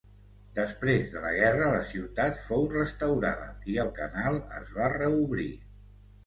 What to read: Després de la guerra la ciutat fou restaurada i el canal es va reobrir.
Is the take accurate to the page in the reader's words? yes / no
yes